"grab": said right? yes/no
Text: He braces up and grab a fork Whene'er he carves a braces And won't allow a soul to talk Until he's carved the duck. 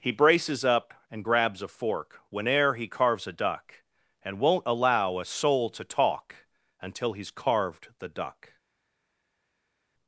no